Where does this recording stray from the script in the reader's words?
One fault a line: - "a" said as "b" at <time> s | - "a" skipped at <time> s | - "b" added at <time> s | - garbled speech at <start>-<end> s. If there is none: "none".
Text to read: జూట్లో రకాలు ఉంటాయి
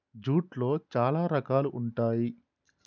- "చాలా" added at 0.9 s